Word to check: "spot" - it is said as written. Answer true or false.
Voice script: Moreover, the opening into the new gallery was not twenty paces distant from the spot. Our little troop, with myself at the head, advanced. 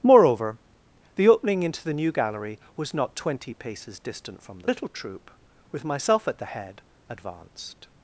false